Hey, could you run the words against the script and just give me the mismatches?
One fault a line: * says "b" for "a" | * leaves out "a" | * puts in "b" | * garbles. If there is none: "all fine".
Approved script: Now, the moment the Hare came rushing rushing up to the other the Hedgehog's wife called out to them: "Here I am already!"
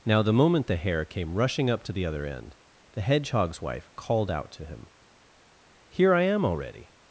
* leaves out "rushing"
* puts in "end"
* says "him" for "them"